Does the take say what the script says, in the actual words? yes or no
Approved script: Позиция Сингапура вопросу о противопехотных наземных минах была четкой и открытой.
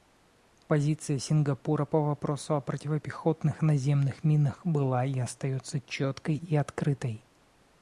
no